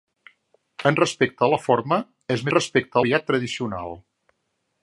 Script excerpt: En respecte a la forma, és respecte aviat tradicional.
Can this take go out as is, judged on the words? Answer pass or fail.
pass